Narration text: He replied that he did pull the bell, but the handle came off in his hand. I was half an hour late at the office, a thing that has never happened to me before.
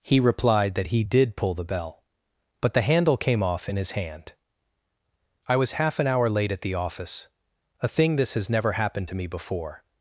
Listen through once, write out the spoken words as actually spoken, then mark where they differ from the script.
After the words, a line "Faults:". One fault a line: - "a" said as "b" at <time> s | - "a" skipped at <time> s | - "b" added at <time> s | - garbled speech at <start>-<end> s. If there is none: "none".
He replied that he did pull the bell, but the handle came off in his hand. I was half an hour late at the office, a thing this has never happened to me before.
Faults:
- "that" said as "this" at 8.2 s